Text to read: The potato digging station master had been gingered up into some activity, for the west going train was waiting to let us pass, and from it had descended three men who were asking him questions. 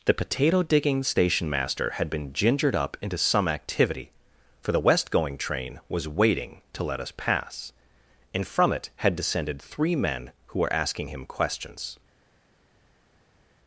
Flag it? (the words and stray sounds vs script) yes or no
no